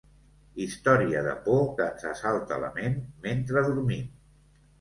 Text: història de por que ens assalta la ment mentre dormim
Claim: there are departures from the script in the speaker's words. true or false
false